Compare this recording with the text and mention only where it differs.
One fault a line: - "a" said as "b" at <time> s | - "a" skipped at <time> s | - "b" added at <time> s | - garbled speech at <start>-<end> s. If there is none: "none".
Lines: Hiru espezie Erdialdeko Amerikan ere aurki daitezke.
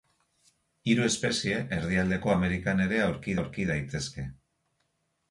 - "aurki" added at 3.4 s